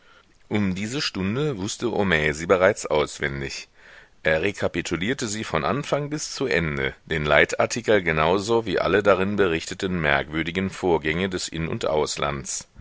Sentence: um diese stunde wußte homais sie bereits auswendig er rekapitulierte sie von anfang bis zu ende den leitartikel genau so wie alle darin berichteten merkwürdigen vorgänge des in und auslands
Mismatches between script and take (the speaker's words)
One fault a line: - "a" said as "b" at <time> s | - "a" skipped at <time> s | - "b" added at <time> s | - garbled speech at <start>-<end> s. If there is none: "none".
none